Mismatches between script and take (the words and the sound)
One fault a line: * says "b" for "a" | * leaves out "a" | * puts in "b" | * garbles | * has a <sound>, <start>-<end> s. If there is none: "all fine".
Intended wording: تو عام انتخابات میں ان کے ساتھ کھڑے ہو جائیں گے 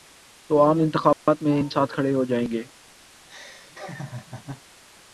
* has a dropout, 1.1-1.3 s
* leaves out "کے"
* has a laugh, 3.2-4.6 s